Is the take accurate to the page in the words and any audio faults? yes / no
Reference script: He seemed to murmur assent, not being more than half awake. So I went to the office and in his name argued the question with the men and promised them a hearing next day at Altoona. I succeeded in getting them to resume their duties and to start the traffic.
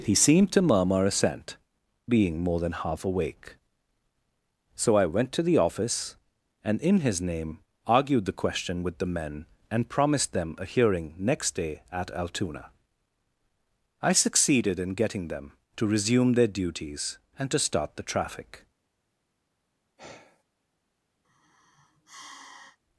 no